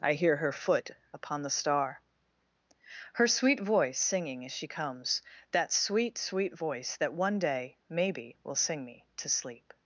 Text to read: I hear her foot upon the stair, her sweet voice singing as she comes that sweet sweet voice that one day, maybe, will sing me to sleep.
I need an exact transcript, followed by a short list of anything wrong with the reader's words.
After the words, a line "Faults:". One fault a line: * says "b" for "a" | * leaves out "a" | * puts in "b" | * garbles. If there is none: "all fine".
I hear her foot upon the star, her sweet voice singing as she comes that sweet sweet voice that one day, maybe, will sing me to sleep.
Faults:
* says "star" for "stair"